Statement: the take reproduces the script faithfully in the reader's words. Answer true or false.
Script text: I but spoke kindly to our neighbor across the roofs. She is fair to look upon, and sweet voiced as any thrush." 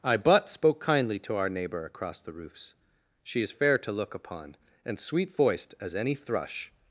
true